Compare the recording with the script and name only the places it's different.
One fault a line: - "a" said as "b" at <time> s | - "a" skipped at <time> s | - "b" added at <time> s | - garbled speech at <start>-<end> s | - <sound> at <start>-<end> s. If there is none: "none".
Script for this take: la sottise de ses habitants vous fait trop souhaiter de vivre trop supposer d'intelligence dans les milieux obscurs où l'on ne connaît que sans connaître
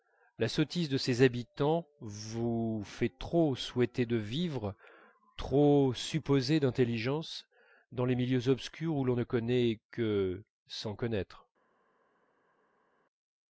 none